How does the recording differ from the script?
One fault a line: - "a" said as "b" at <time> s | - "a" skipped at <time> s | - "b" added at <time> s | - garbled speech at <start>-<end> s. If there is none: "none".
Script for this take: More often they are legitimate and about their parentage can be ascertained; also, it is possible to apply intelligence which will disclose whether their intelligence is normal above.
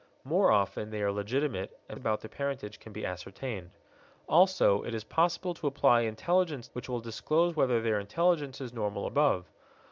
none